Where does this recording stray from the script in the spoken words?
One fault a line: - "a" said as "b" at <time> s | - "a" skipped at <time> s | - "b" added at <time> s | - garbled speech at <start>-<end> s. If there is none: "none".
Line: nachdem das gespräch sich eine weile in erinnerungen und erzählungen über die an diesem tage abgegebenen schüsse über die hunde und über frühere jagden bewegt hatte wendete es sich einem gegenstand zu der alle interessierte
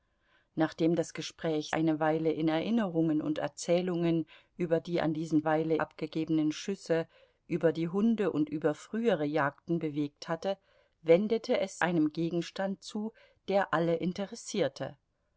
- "sich" skipped at 1.8 s
- "tage" said as "weile" at 5.4 s
- "sich" skipped at 11.8 s